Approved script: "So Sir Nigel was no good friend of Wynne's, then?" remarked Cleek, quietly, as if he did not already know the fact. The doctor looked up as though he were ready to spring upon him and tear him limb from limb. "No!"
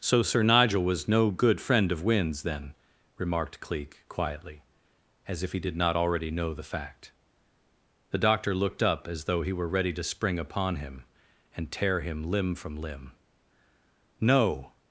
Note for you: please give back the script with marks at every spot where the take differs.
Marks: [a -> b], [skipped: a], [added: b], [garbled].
"So Sir Nigel was no good friend of Wynne's, then?" remarked Cleek, quietly, as if he did not already know the fact. The doctor looked up as though he were ready to spring upon him and tear him limb from limb. "No!"